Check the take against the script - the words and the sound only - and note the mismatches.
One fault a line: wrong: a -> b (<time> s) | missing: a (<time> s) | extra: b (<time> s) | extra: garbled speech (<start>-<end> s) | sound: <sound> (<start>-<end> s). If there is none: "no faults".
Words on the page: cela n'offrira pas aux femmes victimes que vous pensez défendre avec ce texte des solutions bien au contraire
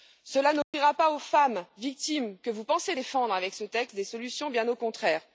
sound: dropout (0.6-0.7 s)